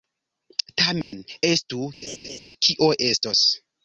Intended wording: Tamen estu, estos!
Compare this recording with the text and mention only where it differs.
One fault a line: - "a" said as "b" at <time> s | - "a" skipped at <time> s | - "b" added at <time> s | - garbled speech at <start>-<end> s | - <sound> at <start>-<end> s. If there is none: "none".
- dropout at 1.0-1.1 s
- laugh at 2.0-2.4 s
- "kio" added at 2.7 s